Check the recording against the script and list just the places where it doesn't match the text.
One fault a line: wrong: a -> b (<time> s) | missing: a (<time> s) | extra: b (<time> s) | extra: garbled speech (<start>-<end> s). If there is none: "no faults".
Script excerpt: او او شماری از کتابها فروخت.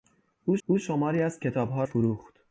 no faults